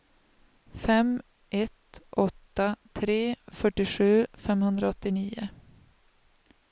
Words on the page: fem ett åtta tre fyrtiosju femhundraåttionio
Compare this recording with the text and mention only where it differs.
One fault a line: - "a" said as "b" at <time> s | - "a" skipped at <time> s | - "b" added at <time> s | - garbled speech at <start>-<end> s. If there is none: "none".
none